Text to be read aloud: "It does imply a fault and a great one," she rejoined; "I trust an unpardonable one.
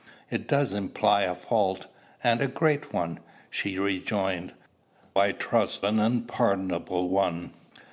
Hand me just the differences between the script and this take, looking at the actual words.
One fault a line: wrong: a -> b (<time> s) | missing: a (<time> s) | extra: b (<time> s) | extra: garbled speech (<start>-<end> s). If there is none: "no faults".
no faults